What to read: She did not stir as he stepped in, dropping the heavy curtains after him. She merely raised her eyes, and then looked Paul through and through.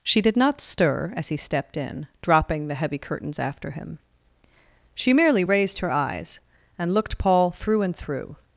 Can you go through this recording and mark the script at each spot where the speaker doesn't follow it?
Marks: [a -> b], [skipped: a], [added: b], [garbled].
She did not stir as he stepped in, dropping the heavy curtains after him. She merely raised her eyes, and [skipped: then] looked Paul through and through.